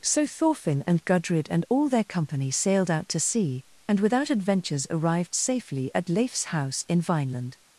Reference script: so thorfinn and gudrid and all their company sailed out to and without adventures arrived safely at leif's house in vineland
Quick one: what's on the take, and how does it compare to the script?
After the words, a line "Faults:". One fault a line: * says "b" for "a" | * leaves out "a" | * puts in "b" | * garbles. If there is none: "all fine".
so thorfinn and gudrid and all their company sailed out to sea and without adventures arrived safely at leif's house in vineland
Faults:
* puts in "sea"